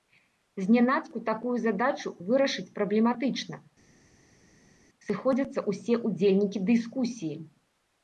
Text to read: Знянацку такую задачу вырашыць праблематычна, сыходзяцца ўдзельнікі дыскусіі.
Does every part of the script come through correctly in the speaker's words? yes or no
no